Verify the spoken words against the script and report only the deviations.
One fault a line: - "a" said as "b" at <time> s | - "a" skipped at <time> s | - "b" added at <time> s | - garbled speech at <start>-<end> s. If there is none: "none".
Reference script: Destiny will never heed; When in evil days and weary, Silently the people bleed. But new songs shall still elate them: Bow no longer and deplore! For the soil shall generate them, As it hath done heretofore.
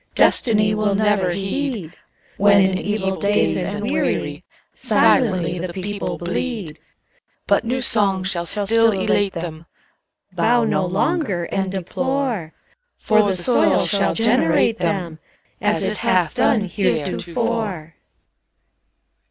none